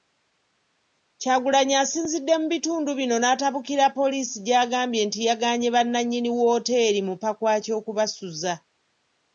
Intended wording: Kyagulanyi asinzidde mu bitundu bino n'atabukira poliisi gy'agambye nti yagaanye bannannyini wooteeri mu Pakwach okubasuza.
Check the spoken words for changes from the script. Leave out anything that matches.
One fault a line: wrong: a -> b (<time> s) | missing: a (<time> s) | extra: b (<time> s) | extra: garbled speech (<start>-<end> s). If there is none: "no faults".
no faults